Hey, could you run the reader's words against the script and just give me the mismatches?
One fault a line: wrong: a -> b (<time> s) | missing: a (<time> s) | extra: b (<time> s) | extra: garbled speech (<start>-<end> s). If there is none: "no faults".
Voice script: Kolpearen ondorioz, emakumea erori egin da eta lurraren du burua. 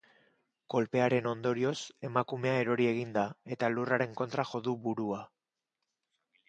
extra: kontra jo (4.2 s)